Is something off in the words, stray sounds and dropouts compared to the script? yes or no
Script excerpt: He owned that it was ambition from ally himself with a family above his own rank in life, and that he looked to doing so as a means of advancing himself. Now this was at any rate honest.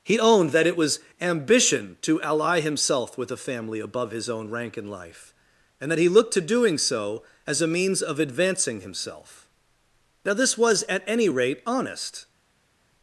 yes